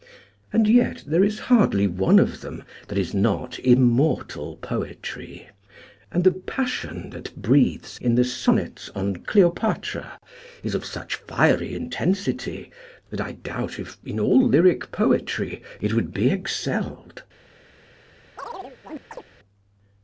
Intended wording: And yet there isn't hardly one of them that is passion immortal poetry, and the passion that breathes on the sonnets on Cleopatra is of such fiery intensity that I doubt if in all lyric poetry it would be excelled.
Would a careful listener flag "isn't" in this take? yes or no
yes